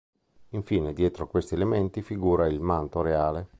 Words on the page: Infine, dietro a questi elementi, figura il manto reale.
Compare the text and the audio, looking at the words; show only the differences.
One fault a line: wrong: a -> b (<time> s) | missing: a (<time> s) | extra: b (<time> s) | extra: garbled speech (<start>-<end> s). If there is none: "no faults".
no faults